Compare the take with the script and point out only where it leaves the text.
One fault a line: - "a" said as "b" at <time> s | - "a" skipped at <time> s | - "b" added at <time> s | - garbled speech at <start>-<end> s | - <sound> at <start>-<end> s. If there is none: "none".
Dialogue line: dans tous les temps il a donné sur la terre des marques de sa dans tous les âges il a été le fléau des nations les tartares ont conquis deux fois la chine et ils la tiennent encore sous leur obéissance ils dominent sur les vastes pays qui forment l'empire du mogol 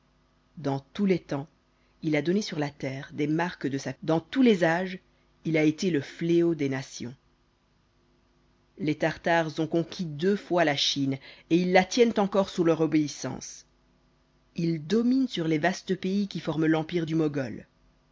none